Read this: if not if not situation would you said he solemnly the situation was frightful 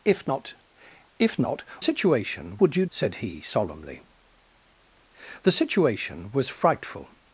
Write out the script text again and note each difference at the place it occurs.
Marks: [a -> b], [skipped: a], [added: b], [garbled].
if not if not situation would you said he solemnly the situation was frightful